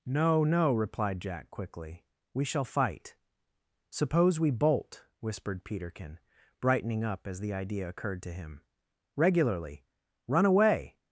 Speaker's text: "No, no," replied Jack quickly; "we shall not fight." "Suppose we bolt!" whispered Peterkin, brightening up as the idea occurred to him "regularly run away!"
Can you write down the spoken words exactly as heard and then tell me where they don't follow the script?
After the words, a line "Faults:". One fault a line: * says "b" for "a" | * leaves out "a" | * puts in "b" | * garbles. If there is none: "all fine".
"No, no," replied Jack quickly; "we shall fight." "Suppose we bolt!" whispered Peterkin, brightening up as the idea occurred to him "regularly run away!"
Faults:
* leaves out "not"